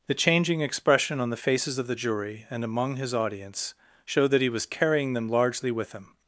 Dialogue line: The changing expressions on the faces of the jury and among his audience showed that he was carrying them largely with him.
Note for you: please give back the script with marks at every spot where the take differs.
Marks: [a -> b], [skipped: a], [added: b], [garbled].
The changing [expressions -> expression] on the faces of the jury and among his audience showed that he was carrying them largely with him.